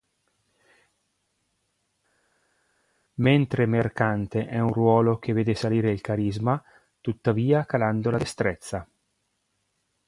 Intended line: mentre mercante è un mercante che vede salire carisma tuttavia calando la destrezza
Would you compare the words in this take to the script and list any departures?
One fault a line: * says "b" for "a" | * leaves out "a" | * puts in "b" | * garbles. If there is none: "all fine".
* says "ruolo" for "mercante"
* puts in "il"